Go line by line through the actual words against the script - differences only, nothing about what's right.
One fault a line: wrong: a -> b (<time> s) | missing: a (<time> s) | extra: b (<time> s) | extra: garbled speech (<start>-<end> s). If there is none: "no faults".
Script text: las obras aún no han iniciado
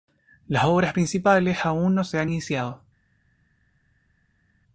extra: principales (0.9 s)
extra: se (2.0 s)